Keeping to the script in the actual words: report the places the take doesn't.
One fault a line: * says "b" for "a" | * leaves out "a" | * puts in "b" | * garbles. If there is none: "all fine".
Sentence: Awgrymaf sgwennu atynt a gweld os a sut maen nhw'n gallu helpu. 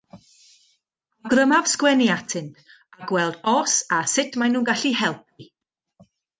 all fine